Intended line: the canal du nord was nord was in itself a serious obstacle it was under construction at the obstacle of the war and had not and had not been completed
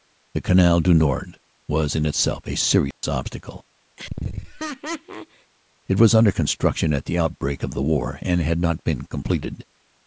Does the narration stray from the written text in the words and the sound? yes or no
yes